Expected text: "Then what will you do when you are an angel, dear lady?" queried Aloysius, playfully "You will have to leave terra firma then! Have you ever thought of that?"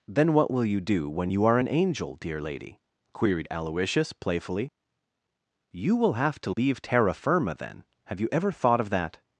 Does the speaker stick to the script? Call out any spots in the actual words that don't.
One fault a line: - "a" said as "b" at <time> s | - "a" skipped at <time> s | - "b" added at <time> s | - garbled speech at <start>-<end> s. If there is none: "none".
none